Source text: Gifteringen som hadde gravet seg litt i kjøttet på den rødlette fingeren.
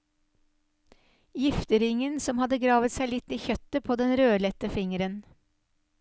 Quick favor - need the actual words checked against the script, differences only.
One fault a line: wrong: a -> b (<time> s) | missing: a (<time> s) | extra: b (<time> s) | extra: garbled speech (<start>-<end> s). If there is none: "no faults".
no faults